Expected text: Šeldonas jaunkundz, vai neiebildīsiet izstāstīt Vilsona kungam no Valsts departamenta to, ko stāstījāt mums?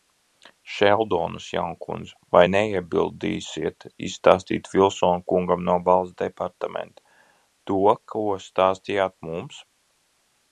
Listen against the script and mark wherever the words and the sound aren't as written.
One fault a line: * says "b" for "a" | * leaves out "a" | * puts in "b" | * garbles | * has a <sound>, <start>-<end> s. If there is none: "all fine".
all fine